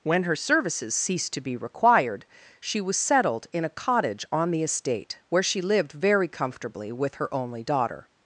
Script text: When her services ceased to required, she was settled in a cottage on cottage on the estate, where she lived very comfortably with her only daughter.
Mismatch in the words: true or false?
true